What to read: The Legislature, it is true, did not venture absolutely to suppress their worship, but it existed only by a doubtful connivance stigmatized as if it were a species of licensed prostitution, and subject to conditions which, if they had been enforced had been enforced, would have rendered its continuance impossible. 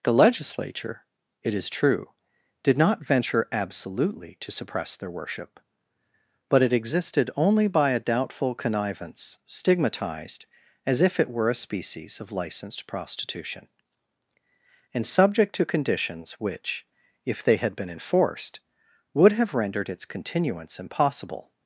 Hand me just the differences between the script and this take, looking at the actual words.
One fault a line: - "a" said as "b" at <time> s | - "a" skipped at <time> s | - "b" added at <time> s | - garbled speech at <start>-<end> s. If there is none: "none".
- "had been enforced" skipped at 18.6 s